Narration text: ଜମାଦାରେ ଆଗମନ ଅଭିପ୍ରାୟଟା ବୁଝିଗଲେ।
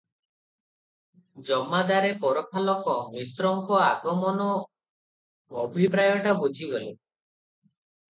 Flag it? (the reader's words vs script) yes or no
yes